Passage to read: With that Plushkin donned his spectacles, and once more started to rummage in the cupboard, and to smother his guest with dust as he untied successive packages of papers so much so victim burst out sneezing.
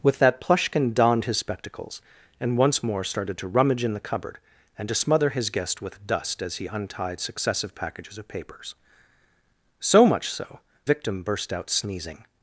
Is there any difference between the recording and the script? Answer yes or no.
no